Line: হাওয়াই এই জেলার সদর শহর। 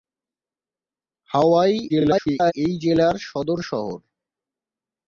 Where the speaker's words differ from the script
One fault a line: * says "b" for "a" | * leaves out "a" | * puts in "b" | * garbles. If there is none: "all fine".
* garbles